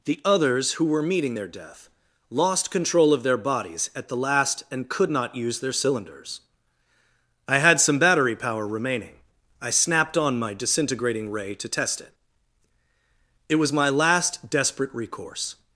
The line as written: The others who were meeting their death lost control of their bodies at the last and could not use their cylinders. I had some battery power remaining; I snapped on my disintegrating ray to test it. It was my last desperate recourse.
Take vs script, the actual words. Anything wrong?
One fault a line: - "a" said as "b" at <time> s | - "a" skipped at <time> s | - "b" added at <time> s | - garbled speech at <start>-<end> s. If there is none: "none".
none